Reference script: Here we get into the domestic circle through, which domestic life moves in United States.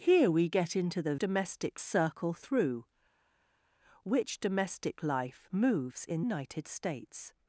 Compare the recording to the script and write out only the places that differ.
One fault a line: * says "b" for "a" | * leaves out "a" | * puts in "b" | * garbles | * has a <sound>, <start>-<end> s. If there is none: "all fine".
all fine